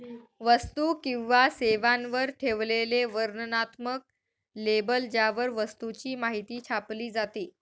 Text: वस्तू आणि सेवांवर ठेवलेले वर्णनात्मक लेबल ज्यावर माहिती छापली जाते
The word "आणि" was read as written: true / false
false